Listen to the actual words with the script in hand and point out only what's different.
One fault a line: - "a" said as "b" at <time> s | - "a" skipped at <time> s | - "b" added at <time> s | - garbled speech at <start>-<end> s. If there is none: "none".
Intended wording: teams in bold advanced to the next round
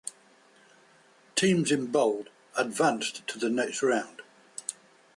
none